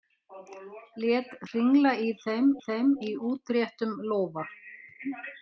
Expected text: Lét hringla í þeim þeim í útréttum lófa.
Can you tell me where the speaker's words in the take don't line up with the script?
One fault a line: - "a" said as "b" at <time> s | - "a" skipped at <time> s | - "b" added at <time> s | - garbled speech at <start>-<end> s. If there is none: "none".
none